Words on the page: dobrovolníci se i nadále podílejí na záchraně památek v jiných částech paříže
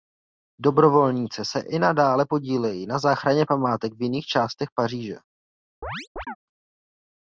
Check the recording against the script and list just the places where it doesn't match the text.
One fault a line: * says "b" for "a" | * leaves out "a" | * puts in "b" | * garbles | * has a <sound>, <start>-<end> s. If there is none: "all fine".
* has a chirp, 5.8-6.4 s